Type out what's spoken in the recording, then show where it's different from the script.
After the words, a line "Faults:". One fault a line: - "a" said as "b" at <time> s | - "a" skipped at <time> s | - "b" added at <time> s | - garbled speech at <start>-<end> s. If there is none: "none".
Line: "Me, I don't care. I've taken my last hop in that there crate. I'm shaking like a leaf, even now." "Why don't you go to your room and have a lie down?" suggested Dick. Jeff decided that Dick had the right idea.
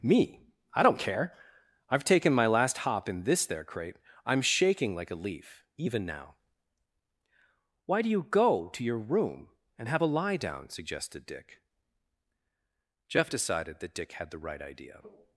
"Me, I don't care. I've taken my last hop in this there crate. I'm shaking like a leaf, even now." "Why do you go to your room and have a lie down?" suggested Dick. Jeff decided that Dick had the right idea.
Faults:
- "that" said as "this" at 3.2 s
- "don't" said as "do" at 8.0 s